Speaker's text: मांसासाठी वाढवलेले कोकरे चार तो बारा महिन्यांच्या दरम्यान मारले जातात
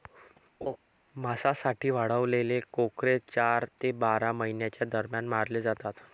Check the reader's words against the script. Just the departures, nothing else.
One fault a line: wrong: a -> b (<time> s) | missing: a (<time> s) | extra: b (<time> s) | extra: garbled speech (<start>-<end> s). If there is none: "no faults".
wrong: तो -> ते (3.8 s)